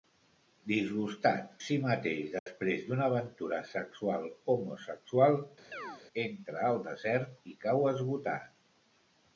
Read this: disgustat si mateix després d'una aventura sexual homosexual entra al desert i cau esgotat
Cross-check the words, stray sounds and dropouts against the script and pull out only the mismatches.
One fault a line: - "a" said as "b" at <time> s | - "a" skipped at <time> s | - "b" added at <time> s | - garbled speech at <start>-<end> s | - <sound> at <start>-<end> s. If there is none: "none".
- dropout at 2.4-2.5 s
- chirp at 5.7-6.0 s